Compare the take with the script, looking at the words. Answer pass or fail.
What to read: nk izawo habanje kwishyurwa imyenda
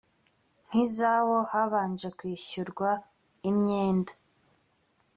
pass